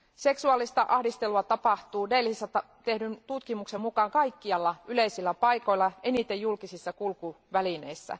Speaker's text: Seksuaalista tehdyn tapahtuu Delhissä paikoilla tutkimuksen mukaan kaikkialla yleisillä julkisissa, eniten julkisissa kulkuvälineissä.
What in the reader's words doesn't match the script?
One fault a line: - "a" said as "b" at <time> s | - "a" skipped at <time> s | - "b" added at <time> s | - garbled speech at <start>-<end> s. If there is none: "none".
- "tehdyn" said as "ahdistelua" at 0.9 s
- "paikoilla" said as "tehdyn" at 2.8 s
- "julkisissa" said as "paikoilla" at 5.3 s